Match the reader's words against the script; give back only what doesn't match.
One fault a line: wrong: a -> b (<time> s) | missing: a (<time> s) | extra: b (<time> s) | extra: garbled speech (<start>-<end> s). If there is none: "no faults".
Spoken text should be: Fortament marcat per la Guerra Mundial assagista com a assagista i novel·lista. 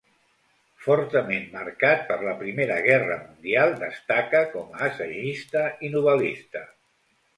extra: Primera (2.4 s)
wrong: assagista -> destaca (3.8 s)